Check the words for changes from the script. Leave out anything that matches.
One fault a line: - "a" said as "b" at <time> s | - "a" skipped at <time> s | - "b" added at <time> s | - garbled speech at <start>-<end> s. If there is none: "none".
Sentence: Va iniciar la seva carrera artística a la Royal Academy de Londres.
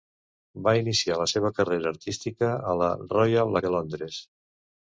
- "Academy" skipped at 3.6 s